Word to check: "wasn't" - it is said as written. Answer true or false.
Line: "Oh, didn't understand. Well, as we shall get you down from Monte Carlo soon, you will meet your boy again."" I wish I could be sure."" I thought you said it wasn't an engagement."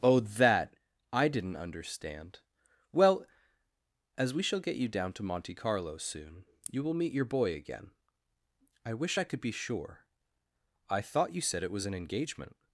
false